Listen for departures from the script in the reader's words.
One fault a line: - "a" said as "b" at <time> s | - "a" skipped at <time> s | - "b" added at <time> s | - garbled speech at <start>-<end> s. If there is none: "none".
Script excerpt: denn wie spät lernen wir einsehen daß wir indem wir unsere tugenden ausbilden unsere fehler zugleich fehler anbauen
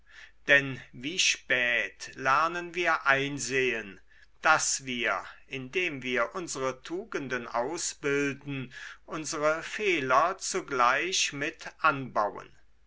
- "fehler" said as "mit" at 11.3 s